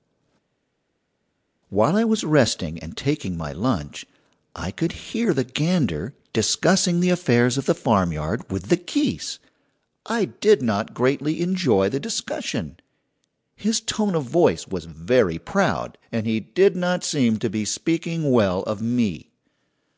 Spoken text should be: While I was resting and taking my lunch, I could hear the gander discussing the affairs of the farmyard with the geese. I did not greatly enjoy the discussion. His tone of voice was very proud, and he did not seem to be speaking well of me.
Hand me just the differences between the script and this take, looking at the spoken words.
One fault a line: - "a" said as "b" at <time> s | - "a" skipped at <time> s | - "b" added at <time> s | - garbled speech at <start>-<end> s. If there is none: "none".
none